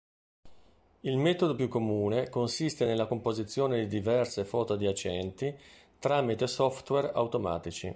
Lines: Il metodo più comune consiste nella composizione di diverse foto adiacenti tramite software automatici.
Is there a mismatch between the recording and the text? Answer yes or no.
no